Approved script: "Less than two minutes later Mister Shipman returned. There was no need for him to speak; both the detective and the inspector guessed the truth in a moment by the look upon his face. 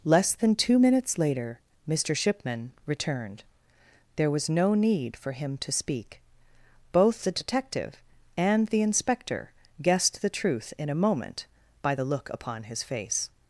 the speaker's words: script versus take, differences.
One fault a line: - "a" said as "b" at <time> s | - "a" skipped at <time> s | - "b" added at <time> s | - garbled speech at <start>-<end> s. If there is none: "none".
none